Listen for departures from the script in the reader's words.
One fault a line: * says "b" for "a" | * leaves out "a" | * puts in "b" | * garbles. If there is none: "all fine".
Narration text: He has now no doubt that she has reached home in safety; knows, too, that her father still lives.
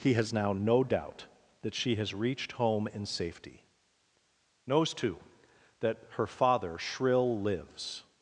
* says "shrill" for "still"